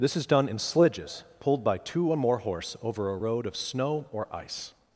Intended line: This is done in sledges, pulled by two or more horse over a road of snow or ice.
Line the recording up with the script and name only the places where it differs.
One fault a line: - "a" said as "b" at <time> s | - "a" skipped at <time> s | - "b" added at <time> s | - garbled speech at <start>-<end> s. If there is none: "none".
none